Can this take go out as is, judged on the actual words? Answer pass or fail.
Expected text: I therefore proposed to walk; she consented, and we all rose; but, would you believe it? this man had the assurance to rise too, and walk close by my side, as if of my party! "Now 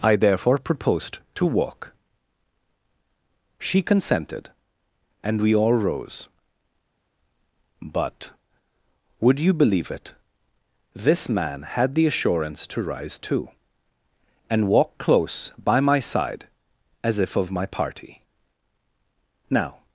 pass